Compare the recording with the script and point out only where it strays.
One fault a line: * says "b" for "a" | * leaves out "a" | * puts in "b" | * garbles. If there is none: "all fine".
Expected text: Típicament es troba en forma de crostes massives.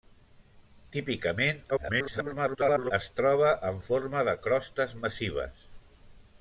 * garbles